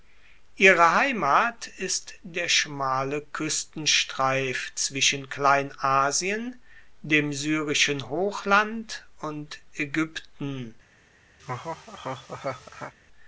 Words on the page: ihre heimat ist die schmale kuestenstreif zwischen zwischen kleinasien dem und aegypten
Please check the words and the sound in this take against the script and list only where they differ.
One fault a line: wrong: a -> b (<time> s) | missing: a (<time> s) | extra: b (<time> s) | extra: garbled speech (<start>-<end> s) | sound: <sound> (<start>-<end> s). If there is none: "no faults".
wrong: die -> der (2.2 s)
missing: zwischen (5.3 s)
extra: syrischen hochland (7.3 s)
sound: laugh (11.4-12.9 s)